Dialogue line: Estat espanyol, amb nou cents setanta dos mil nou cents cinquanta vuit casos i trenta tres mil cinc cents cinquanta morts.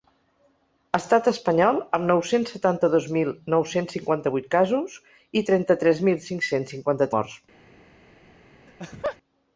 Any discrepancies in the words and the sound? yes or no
yes